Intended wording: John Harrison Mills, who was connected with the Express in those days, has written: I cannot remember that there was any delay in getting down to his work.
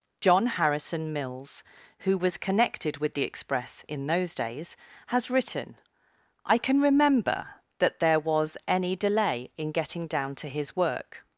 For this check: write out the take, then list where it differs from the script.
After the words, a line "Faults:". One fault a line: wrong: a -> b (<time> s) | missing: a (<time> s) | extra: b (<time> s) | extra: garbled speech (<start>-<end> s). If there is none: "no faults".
John Harrison Mills, who was connected with the Express in those days, has written: I can remember that there was any delay in getting down to his work.
Faults:
wrong: cannot -> can (6.6 s)